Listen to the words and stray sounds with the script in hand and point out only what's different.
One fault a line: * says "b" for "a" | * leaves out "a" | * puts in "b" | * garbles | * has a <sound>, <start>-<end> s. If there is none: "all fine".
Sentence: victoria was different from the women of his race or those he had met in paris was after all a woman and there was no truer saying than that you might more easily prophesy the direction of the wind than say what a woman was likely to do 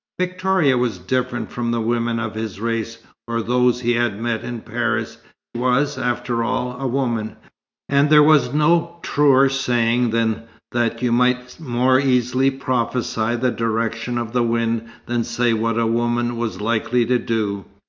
all fine